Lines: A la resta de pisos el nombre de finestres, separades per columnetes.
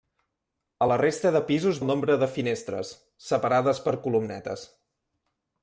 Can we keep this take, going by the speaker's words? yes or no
yes